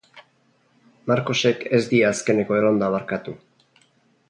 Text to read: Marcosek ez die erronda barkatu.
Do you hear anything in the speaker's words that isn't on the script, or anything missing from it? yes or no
yes